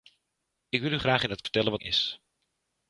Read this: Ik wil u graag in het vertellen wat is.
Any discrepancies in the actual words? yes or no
no